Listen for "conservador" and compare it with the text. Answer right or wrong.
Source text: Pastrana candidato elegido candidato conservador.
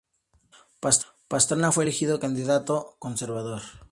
right